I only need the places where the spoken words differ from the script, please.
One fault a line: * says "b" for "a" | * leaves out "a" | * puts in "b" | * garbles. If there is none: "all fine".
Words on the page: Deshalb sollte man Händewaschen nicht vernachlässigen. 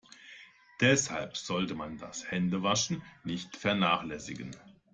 * puts in "das"